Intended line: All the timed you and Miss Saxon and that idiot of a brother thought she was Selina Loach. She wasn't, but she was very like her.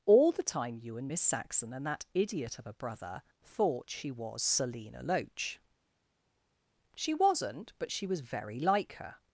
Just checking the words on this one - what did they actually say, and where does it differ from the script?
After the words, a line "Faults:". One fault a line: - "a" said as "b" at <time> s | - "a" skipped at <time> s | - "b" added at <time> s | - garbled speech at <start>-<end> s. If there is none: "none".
All the time you and Miss Saxon and that idiot of a brother thought she was Selina Loach. She wasn't, but she was very like her.
Faults:
- "timed" said as "time" at 0.4 s